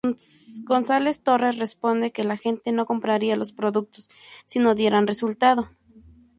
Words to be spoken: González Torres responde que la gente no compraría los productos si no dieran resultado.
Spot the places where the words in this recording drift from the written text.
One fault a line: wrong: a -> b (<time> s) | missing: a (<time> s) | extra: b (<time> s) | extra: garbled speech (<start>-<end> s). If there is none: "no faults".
no faults